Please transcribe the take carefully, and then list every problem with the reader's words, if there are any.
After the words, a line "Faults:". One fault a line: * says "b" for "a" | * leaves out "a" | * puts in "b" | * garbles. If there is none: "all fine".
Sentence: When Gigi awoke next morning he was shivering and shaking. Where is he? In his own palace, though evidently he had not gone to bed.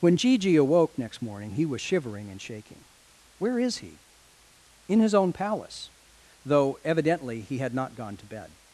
When Gigi awoke next morning he was shivering and shaking. Where is he? In his own palace, though evidently he had not gone to bed.
Faults:
all fine